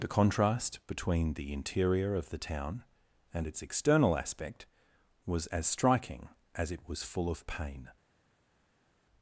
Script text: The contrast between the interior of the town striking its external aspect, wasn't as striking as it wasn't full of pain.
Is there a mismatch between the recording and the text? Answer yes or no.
yes